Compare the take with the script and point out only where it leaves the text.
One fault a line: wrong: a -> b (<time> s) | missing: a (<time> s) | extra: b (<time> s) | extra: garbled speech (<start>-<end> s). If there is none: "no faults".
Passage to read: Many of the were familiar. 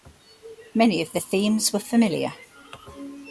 extra: themes (1.2 s)